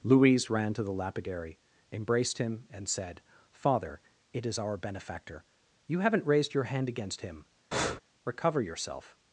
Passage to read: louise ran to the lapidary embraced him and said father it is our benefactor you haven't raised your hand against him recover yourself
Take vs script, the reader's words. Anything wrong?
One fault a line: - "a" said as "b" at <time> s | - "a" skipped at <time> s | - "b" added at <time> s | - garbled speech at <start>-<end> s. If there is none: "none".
none